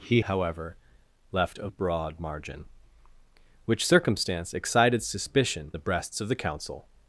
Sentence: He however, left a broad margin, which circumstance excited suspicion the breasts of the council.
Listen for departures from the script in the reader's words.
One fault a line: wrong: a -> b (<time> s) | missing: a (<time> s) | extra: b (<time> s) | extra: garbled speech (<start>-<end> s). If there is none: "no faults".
no faults